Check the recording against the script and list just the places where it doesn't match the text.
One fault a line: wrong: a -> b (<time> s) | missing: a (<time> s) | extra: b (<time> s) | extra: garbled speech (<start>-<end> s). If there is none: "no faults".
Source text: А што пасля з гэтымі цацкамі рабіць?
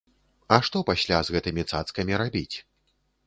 no faults